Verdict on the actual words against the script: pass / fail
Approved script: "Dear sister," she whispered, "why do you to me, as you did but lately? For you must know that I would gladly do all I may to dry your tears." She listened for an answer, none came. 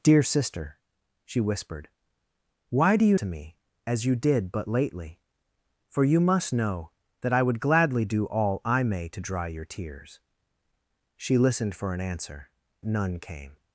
pass